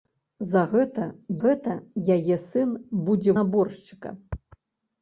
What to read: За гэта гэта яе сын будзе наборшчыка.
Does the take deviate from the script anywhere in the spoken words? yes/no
no